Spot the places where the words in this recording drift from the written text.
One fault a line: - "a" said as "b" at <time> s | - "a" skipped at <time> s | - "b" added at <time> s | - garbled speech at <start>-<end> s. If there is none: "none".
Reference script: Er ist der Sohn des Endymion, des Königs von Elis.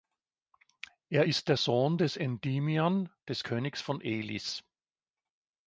none